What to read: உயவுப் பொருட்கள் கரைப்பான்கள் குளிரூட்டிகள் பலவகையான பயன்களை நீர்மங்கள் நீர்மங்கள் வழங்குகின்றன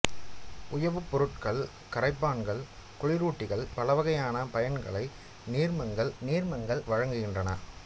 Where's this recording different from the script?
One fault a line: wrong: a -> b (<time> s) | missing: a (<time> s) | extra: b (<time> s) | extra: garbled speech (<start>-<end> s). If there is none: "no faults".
no faults